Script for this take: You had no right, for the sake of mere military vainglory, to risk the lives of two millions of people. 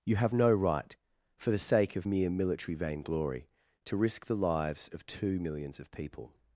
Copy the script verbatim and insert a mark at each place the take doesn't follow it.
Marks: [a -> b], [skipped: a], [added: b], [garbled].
You [had -> have] no right, for the sake of mere military vainglory, to risk the lives of two millions of people.